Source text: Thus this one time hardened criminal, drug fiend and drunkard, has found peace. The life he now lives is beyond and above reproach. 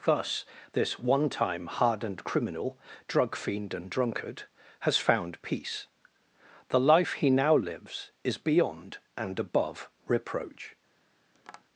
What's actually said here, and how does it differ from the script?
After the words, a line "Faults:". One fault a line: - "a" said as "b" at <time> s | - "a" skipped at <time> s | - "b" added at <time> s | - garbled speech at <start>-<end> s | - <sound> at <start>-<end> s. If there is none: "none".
Thus this one time hardened criminal, drug fiend and drunkard, has found peace. The life he now lives is beyond and above reproach.
Faults:
- tap at 11.3-11.6 s